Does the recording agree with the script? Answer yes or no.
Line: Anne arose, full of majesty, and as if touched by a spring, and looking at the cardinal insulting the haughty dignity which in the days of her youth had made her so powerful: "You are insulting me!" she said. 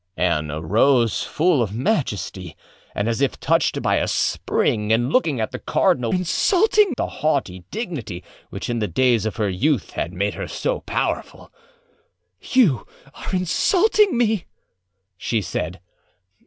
yes